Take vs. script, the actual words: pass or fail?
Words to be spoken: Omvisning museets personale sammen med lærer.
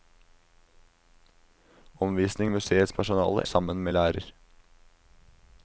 pass